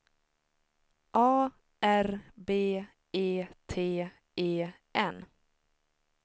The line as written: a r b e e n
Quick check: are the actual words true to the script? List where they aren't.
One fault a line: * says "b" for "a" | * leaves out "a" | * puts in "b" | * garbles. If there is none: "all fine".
* puts in "t"